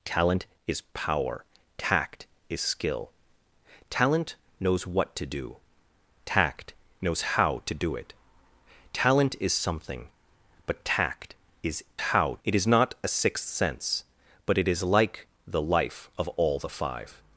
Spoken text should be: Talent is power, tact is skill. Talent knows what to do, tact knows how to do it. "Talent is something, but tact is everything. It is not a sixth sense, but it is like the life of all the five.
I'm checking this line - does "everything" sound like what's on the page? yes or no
no